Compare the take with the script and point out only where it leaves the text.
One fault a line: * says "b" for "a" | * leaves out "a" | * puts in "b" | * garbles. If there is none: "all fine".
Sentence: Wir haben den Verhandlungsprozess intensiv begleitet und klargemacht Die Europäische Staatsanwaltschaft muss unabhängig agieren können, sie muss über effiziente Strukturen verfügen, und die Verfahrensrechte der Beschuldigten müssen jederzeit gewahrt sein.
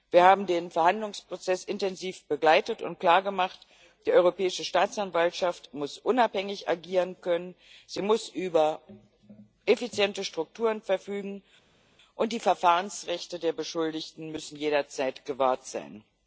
all fine